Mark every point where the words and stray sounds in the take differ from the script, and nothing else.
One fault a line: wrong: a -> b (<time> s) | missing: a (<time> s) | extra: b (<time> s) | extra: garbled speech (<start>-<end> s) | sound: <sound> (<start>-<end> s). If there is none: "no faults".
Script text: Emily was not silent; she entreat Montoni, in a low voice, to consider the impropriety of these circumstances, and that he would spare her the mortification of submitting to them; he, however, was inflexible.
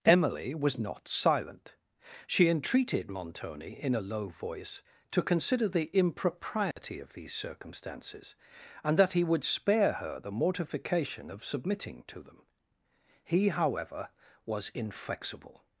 wrong: entreat -> entreated (2.5 s)
sound: dropout (6.7-6.8 s)